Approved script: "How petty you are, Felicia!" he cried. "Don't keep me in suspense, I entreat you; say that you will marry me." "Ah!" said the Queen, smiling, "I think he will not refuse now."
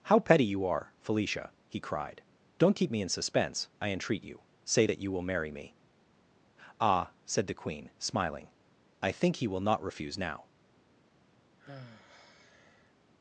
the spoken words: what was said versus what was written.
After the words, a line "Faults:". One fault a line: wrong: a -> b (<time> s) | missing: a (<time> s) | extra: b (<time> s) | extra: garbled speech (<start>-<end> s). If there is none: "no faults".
"How petty you are, Felicia!" he cried. "Don't keep me in suspense, I entreat you; say that you will marry me." "Ah!" said the Queen, smiling, "I think he will not refuse now."
Faults:
no faults